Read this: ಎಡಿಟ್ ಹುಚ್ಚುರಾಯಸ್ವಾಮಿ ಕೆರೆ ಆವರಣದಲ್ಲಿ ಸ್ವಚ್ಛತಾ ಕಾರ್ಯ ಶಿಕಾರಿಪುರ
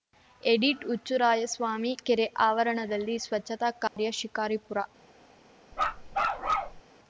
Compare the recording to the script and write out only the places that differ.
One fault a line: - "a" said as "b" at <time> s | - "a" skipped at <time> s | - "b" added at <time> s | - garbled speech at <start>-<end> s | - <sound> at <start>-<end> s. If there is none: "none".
- dropout at 3.9-4.0 s
- bark at 5.7-6.8 s